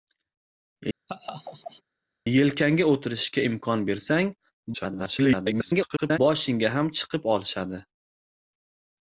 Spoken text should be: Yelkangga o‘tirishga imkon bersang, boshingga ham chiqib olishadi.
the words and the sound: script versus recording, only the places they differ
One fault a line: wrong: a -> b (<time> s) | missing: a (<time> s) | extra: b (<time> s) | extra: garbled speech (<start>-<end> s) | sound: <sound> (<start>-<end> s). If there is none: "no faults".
sound: laugh (1.1-1.8 s)
extra: garbled speech (4.7-6.2 s)